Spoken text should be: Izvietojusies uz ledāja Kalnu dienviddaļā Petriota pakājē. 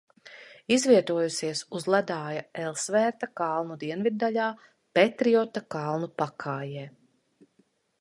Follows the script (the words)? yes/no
no